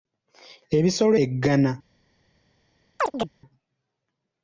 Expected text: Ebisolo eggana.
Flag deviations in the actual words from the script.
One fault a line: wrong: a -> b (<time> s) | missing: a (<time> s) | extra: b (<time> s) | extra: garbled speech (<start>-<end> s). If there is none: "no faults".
no faults